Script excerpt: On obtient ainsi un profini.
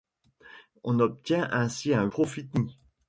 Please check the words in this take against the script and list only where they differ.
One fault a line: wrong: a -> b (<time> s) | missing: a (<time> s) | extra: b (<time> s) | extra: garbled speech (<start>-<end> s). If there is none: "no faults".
no faults